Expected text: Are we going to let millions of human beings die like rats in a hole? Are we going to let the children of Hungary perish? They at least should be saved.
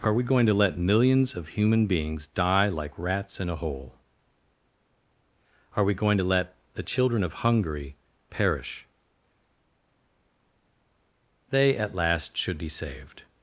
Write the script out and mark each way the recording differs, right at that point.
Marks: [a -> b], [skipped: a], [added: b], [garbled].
Are we going to let millions of human beings die like rats in a hole? Are we going to let the children of Hungary perish? They at [least -> last] should be saved.